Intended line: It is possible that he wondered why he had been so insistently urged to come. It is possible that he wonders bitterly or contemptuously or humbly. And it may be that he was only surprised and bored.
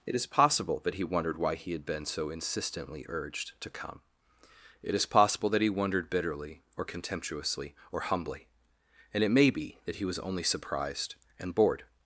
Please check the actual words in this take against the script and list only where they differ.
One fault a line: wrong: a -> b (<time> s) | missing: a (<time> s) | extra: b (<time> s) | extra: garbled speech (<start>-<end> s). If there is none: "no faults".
wrong: wonders -> wondered (5.7 s)